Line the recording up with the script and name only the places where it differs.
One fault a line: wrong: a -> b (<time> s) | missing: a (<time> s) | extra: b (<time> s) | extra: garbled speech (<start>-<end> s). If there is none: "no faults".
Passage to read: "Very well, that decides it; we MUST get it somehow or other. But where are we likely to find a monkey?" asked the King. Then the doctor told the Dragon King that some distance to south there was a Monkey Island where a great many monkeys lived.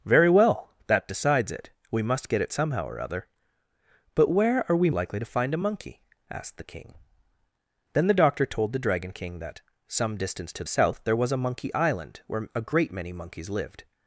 no faults